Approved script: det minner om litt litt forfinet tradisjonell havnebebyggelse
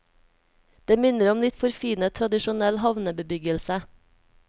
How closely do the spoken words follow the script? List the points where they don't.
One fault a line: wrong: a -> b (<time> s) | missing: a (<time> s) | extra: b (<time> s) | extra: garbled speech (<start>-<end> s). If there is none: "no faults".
missing: litt (1.6 s)